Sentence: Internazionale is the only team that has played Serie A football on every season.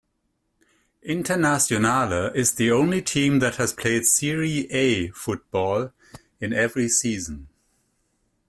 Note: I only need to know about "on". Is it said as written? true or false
false